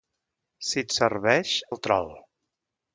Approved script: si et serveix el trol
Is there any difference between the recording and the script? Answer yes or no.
no